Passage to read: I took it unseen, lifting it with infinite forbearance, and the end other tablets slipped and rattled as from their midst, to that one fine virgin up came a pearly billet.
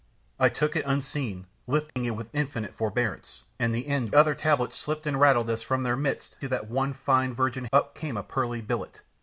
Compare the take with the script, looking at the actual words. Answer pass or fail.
pass